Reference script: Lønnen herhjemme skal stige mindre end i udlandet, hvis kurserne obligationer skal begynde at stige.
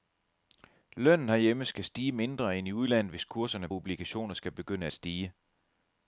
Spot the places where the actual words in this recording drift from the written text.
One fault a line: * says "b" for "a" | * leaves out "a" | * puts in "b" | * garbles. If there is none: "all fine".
all fine